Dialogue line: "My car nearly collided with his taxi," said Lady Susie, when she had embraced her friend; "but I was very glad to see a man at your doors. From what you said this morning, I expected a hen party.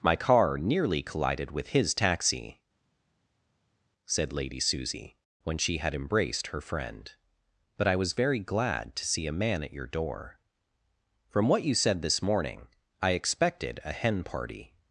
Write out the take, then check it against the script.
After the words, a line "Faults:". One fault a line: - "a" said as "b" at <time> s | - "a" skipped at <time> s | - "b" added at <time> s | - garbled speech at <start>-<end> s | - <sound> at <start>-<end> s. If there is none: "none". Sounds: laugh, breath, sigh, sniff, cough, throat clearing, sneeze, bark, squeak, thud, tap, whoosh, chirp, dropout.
"My car nearly collided with his taxi," said Lady Susie, when she had embraced her friend; "but I was very glad to see a man at your door. From what you said this morning, I expected a hen party.
Faults:
- "doors" said as "door" at 9.9 s